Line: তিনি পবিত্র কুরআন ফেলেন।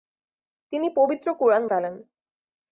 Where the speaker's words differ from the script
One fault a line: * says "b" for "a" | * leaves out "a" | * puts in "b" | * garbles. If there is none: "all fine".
all fine